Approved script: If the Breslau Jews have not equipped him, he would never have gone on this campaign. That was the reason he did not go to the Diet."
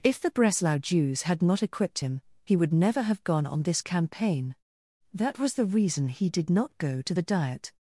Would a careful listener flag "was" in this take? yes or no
no